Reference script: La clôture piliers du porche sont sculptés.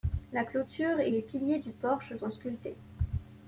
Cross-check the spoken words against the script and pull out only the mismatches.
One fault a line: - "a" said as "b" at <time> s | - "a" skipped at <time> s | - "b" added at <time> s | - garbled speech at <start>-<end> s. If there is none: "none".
- "et les" added at 1.0 s